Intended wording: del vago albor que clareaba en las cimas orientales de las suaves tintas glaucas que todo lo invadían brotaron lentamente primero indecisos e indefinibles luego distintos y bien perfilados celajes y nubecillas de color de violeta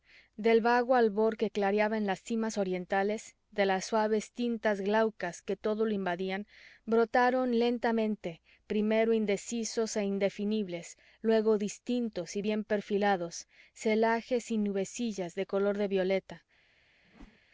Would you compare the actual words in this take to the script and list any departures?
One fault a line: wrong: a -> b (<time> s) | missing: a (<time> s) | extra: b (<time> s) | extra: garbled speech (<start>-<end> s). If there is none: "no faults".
no faults